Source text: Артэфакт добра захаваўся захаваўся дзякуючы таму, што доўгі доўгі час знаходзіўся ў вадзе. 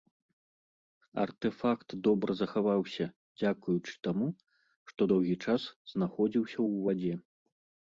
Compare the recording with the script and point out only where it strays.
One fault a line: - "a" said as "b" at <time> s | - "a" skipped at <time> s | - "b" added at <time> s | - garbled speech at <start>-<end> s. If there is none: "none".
- "захаваўся" skipped at 3.0 s
- "доўгі" skipped at 5.3 s